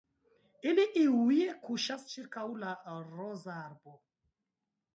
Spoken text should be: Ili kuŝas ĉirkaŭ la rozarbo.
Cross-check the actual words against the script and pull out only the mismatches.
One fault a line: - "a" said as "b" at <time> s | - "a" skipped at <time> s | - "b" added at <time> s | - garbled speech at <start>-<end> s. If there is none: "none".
- "iuj" added at 1.0 s